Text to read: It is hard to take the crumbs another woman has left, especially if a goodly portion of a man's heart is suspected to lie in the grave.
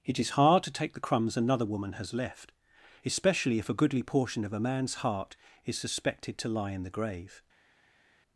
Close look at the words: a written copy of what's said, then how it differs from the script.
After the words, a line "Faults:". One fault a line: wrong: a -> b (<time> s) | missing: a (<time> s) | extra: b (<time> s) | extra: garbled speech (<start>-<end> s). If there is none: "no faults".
It is hard to take the crumbs another woman has left, especially if a goodly portion of a man's heart is suspected to lie in the grave.
Faults:
no faults